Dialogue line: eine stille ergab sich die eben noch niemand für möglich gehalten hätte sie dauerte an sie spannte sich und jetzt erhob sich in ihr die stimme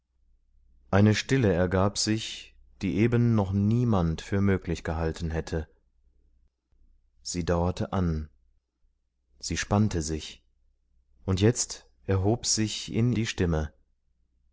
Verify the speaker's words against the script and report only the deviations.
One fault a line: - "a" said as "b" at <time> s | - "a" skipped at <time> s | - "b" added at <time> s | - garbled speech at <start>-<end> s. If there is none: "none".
- "ihr" skipped at 13.1 s